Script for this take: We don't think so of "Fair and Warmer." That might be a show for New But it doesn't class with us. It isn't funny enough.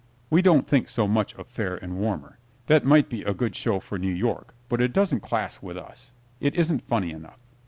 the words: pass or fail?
fail